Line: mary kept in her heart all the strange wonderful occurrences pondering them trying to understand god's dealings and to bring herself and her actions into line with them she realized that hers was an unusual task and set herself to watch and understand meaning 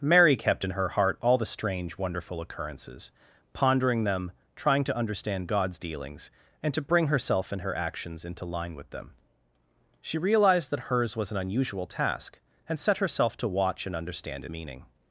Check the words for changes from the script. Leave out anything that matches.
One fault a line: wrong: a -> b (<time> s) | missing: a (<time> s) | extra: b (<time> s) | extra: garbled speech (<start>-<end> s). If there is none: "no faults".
no faults